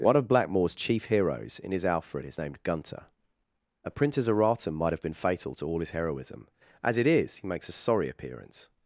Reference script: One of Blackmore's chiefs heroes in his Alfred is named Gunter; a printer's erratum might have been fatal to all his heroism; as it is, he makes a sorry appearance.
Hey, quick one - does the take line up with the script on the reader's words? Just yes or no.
no